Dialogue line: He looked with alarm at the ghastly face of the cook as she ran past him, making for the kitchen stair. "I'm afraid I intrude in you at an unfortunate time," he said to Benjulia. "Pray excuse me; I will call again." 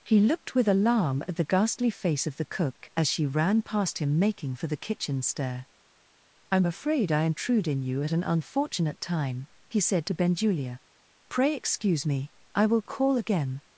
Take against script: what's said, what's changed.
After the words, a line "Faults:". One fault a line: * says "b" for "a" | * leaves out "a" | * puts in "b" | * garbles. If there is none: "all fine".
He looked with alarm at the ghastly face of the cook as she ran past him, making for the kitchen stair. "I'm afraid I intrude in you at an unfortunate time," he said to Benjulia. "Pray excuse me; I will call again."
Faults:
all fine